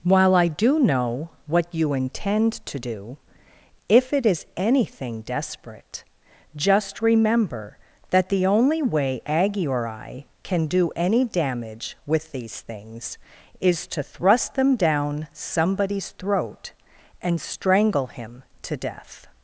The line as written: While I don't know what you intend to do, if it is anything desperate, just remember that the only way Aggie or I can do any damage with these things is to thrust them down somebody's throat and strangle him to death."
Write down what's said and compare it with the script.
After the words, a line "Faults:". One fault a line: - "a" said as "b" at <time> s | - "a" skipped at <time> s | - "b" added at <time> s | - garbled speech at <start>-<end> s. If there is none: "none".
While I do know what you intend to do, if it is anything desperate, just remember that the only way Aggie or I can do any damage with these things is to thrust them down somebody's throat and strangle him to death."
Faults:
- "don't" said as "do" at 0.5 s